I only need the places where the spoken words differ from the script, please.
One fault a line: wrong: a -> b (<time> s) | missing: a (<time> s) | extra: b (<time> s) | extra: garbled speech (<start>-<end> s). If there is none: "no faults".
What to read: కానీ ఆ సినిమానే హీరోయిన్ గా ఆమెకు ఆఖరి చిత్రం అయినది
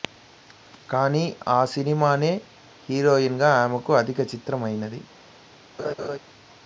no faults